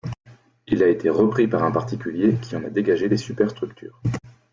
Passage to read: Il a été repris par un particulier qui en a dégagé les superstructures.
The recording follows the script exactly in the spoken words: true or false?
true